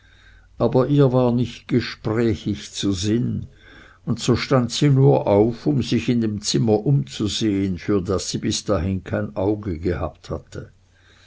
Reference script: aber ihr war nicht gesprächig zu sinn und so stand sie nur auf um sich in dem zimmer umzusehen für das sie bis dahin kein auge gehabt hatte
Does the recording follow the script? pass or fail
pass